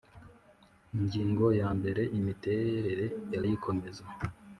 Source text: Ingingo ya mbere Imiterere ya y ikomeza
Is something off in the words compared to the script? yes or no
no